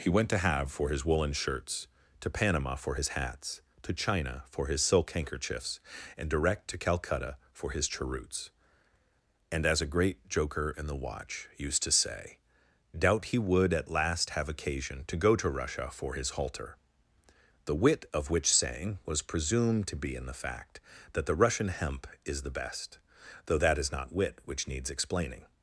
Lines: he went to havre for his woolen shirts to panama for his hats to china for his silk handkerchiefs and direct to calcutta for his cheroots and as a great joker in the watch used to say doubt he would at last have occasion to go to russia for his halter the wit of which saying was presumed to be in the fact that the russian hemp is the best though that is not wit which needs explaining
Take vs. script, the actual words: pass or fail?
pass